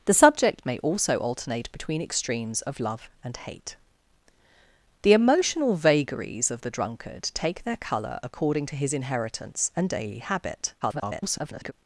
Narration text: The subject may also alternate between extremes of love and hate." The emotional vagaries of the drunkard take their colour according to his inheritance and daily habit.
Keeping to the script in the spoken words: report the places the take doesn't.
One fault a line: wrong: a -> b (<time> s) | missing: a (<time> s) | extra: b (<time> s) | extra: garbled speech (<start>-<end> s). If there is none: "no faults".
extra: garbled speech (10.8-11.7 s)